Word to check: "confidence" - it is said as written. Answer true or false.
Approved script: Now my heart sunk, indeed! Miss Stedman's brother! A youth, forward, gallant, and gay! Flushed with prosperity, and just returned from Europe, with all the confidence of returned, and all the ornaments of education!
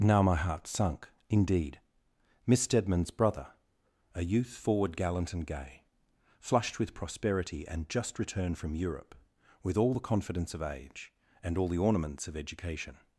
true